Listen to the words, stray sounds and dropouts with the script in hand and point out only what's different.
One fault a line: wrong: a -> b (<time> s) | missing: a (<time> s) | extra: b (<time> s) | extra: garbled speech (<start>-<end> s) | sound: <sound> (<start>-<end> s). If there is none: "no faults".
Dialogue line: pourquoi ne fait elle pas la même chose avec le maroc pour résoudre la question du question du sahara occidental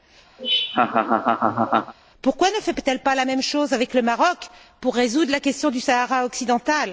sound: laugh (0.4-1.9 s)
missing: question du (5.8 s)